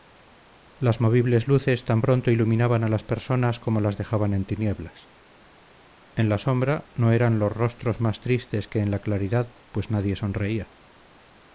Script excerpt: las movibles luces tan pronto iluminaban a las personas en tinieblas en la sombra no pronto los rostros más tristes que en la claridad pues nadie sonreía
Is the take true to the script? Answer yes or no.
no